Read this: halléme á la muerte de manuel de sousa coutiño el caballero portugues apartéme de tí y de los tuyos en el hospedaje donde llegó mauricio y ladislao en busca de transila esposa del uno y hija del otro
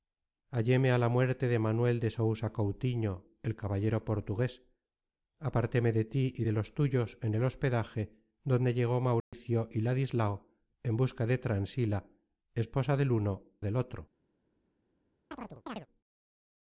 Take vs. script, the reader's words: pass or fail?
fail